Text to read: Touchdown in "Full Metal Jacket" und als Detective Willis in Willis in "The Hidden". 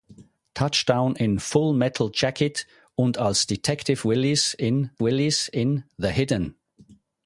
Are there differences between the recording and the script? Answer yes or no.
no